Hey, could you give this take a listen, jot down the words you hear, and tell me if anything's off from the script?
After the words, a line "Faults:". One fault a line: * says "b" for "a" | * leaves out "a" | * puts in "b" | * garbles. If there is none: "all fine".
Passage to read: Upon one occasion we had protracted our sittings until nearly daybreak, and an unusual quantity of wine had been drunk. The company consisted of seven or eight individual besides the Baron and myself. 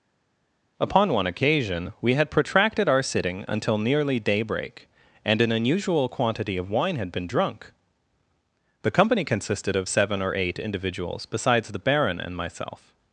Upon one occasion we had protracted our sitting until nearly daybreak, and an unusual quantity of wine had been drunk. The company consisted of seven or eight individuals besides the Baron and myself.
Faults:
* says "sitting" for "sittings"
* says "individuals" for "individual"